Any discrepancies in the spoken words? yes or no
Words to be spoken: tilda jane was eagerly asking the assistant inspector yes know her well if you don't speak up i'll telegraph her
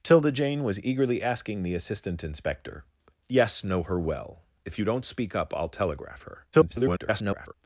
yes